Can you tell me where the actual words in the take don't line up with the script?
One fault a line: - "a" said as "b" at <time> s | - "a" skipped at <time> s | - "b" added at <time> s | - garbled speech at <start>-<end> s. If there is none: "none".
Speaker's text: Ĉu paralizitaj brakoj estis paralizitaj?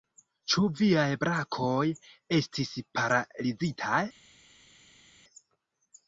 - "paralizitaj" said as "viaj" at 0.8 s